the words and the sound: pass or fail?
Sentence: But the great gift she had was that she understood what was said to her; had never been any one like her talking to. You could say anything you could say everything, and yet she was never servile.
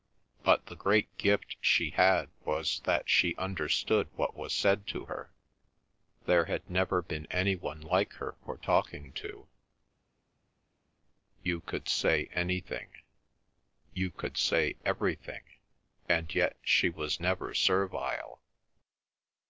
fail